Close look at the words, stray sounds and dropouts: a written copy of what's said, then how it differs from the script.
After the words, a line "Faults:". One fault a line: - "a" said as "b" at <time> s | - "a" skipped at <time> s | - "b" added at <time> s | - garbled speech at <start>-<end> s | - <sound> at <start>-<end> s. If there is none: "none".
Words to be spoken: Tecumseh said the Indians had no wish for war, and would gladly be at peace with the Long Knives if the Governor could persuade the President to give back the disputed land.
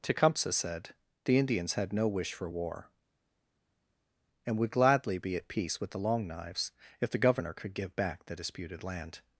Tecumseh said the Indians had no wish for war, and would gladly be at peace with the Long Knives if the Governor could give back the disputed land.
Faults:
- "persuade the President to" skipped at 7.7 s